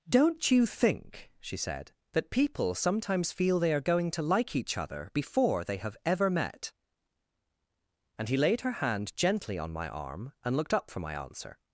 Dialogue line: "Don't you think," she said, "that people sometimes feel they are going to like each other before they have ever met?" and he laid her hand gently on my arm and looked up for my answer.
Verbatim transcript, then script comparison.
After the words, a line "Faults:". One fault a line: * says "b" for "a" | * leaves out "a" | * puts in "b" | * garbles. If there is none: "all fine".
"Don't you think," she said, "that people sometimes feel they are going to like each other before they have ever met?" and he laid her hand gently on my arm and looked up for my answer.
Faults:
all fine